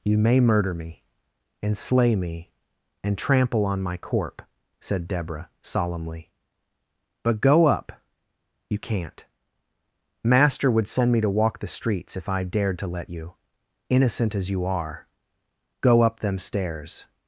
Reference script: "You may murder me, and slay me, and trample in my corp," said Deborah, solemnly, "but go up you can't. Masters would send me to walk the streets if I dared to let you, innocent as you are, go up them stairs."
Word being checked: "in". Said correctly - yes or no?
no